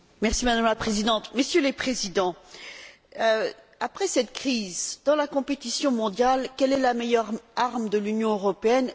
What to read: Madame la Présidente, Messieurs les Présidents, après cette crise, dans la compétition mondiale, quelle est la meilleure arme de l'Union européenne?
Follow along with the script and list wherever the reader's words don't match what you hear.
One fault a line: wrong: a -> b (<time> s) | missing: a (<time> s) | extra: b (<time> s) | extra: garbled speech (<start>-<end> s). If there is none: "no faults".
no faults